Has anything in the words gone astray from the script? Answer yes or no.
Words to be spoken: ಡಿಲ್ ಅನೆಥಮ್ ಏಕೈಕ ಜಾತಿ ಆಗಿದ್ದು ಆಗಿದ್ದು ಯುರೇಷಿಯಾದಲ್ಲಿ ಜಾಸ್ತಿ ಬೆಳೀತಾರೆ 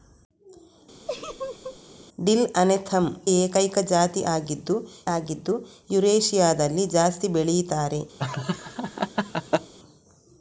no